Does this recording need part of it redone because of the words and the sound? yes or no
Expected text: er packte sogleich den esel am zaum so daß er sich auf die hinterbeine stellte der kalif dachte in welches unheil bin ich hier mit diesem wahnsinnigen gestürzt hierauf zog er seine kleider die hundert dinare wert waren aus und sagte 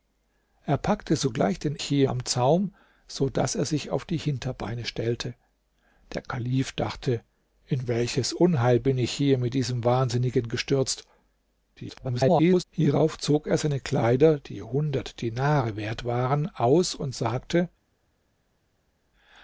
yes